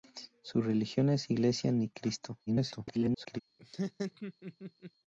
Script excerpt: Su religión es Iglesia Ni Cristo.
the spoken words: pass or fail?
fail